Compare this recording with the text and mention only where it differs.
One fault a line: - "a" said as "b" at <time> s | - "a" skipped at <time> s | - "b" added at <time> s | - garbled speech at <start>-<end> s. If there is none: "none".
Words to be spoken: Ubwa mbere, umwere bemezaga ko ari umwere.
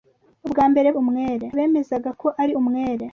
none